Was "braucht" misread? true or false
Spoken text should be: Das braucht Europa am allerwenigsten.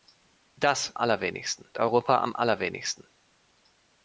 true